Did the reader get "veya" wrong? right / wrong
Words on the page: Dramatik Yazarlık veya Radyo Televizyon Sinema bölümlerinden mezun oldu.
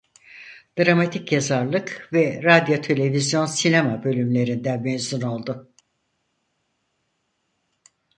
wrong